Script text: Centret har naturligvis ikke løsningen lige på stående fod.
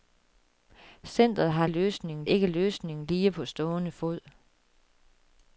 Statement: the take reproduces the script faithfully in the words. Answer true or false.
false